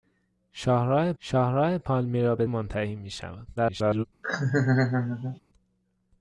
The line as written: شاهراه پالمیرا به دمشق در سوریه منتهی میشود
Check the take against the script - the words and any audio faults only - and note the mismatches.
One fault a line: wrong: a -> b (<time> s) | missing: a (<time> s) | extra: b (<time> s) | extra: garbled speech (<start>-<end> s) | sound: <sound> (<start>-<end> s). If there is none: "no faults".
extra: شاهراه (1.2 s)
missing: دمشق در سوریه (2.4 s)
extra: garbled speech (3.6-4.1 s)
sound: laugh (4.2-5.4 s)